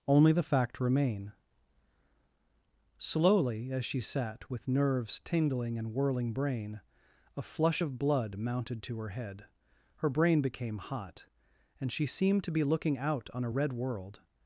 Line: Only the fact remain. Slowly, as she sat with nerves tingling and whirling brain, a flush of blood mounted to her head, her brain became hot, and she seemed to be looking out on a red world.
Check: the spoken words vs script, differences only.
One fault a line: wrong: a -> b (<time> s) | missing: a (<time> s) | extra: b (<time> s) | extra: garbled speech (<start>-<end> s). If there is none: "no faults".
no faults